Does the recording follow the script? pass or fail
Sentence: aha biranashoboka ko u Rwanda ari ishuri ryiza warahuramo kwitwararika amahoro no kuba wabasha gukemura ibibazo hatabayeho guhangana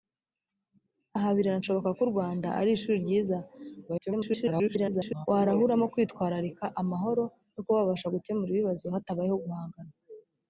fail